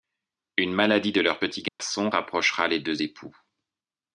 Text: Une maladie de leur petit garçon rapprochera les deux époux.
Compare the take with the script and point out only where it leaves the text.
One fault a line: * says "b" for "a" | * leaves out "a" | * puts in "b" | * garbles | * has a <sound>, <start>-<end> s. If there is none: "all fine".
* has a dropout, 1.7-1.8 s